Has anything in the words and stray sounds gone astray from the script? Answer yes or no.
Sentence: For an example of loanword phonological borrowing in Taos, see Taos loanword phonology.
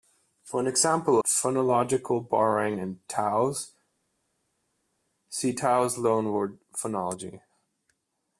yes